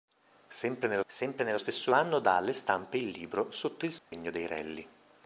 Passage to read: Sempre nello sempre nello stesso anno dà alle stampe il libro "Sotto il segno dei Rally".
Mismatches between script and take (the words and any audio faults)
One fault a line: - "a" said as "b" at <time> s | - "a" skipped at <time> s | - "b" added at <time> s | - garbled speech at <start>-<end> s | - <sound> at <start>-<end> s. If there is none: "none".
- dropout at 4.0-4.1 s